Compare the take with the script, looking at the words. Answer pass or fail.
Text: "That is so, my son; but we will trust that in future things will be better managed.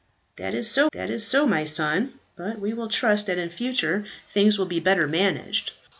fail